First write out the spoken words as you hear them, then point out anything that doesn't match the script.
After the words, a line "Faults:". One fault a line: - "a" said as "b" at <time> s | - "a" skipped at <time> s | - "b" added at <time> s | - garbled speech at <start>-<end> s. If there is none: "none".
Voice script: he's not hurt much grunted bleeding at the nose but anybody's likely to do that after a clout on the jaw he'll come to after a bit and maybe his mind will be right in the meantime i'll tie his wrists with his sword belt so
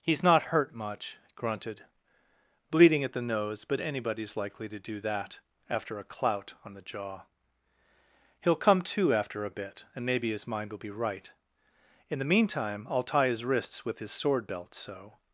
he's not hurt much grunted bleeding at the nose but anybody's likely to do that after a clout on the jaw he'll come to after a bit and maybe his mind will be right in the meantime i'll tie his wrists with his sword belt so
Faults:
none